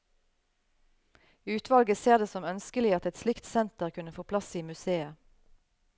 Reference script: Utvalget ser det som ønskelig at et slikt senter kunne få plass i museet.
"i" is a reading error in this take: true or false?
false